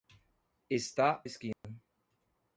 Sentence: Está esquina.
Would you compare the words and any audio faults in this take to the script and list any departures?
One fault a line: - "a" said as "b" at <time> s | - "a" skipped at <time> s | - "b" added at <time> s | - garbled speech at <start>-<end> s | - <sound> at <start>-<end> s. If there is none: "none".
- dropout at 1.5-1.6 s